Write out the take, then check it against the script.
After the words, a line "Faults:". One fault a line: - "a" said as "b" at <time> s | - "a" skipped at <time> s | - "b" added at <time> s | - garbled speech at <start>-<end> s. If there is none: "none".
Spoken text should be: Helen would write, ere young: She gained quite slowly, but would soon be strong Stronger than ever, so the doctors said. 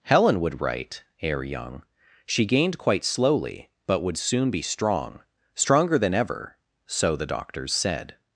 Helen would write, ere young: She gained quite slowly, but would soon be strong Stronger than ever, so the doctors said.
Faults:
none